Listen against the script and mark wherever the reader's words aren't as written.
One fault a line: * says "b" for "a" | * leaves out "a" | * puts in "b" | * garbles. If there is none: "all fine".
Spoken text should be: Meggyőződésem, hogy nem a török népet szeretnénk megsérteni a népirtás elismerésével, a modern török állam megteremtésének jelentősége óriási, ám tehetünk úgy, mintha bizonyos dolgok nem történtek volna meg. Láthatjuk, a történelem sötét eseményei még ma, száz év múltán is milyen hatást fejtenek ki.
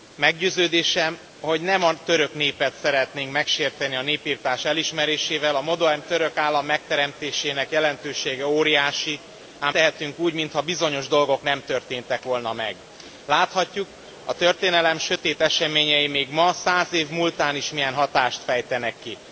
all fine